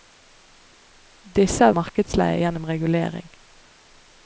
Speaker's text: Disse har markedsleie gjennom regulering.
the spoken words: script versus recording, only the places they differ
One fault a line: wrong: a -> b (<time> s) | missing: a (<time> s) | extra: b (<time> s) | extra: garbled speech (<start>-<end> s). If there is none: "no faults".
no faults